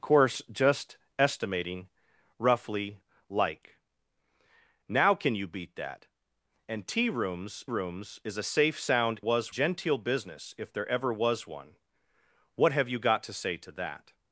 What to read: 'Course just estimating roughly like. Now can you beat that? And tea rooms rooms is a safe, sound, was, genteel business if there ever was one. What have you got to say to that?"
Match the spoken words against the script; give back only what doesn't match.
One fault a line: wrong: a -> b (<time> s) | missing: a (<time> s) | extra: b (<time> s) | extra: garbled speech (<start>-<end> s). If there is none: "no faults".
no faults